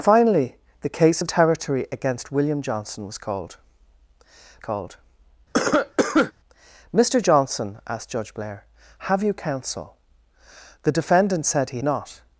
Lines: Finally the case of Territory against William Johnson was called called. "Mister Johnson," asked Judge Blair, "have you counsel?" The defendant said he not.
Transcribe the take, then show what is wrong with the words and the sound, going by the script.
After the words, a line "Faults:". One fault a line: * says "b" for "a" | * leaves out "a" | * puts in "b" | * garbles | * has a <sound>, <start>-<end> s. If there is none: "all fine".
Finally the case of Territory against William Johnson was called called. "Mister Johnson," asked Judge Blair, "have you counsel?" The defendant said he not.
Faults:
* has a cough, 5.5-6.3 s